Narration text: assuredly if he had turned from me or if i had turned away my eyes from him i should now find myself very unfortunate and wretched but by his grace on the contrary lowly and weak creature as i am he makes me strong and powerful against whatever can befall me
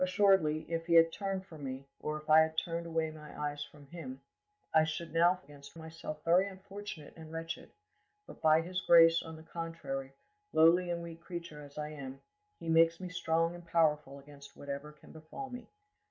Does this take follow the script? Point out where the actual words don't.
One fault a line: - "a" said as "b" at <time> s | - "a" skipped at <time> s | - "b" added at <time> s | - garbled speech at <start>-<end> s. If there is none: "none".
- "find" said as "against" at 5.4 s